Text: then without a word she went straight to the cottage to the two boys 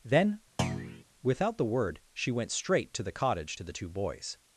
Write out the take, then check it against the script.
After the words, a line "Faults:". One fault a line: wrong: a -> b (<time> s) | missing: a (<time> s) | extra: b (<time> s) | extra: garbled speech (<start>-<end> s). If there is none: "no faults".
then without the word she went straight to the cottage to the two boys
Faults:
wrong: a -> the (1.6 s)